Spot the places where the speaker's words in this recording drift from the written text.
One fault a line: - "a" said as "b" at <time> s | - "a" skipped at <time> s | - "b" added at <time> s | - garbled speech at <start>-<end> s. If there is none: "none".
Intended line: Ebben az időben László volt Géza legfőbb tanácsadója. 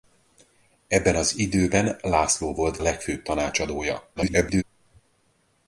- "Géza" skipped at 2.8 s
- garbled speech at 4.2-4.6 s